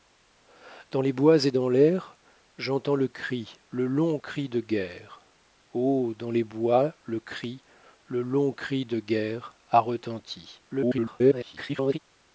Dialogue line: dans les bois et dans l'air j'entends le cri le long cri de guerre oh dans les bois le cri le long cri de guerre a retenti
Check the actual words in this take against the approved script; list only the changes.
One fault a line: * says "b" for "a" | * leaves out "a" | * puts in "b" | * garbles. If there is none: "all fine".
* garbles